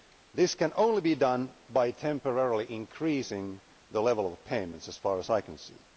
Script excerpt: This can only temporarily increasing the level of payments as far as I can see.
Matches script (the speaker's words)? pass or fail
fail